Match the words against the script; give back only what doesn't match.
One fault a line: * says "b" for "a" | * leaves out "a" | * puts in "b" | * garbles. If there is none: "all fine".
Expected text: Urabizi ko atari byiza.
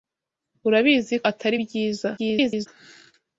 * leaves out "ko"
* garbles